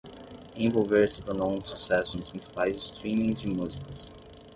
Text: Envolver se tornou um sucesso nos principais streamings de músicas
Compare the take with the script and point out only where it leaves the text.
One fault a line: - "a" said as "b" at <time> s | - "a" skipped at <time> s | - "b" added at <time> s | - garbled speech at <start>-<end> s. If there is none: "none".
none